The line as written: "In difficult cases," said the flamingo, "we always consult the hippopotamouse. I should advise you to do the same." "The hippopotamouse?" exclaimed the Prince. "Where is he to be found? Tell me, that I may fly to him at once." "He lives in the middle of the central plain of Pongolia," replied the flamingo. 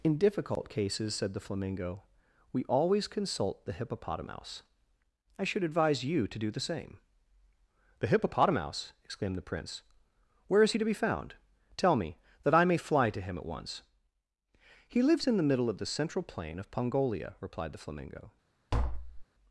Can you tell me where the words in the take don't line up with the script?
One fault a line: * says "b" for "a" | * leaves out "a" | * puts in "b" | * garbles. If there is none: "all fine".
all fine